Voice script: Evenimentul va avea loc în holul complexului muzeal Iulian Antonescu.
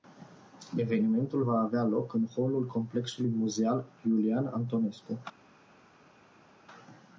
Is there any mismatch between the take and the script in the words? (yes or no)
no